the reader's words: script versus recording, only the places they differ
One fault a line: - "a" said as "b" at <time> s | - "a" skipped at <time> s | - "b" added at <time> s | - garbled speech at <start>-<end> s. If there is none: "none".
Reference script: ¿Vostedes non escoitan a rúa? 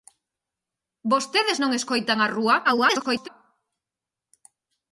- garbled speech at 2.6-3.3 s